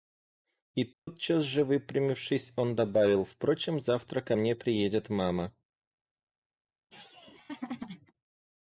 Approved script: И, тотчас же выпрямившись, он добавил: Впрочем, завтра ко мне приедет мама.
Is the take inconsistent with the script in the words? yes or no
no